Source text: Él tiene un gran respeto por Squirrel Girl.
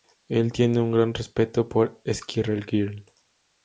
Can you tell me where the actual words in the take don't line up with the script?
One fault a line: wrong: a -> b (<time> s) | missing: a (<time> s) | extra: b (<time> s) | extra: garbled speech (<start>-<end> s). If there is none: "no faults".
no faults